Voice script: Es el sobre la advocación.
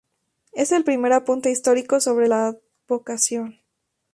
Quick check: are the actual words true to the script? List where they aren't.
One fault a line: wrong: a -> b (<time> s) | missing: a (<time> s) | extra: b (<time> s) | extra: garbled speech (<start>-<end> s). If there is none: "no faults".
extra: primer apunte histórico (0.8 s)